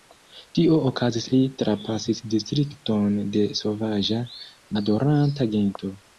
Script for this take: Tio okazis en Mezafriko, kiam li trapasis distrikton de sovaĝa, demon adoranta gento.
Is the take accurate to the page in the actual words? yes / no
no